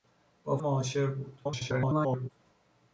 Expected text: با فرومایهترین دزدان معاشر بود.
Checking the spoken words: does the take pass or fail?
fail